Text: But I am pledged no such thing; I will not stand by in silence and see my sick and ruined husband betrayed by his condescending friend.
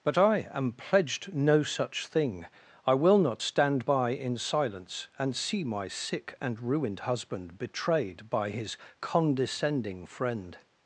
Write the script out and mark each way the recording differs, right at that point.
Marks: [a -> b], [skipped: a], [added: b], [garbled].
But I am pledged no such thing; I will not stand by in silence and see my sick and ruined husband betrayed by his condescending friend.